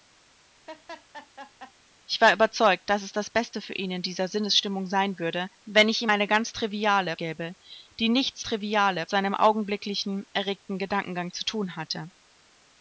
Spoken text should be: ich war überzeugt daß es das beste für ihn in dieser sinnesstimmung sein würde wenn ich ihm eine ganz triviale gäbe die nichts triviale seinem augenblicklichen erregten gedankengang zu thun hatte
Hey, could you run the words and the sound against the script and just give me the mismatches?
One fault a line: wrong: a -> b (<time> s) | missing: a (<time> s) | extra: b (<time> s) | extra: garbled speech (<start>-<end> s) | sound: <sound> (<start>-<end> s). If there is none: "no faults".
sound: laugh (0.7-1.7 s)